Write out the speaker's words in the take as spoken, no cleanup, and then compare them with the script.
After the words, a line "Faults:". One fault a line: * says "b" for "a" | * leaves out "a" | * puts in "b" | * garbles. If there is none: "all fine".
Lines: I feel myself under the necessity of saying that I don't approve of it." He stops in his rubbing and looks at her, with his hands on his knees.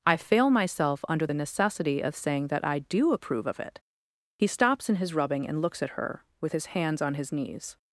I fail myself under the necessity of saying that I do approve of it." He stops in his rubbing and looks at her, with his hands on his knees.
Faults:
* says "fail" for "feel"
* says "do" for "don't"